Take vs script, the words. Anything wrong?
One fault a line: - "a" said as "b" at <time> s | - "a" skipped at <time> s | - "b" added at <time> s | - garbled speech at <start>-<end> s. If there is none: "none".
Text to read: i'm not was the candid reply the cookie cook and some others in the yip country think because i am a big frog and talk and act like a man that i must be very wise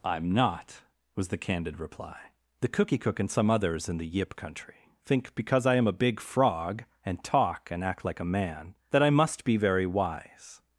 none